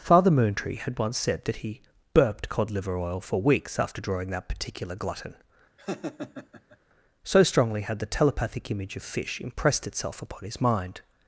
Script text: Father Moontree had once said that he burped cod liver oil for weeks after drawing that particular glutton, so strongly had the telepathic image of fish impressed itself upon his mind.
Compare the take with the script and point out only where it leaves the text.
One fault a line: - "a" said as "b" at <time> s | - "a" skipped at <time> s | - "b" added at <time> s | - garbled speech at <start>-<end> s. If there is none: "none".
none